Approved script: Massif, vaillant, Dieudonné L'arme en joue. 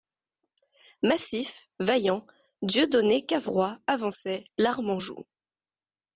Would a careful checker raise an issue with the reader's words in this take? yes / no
yes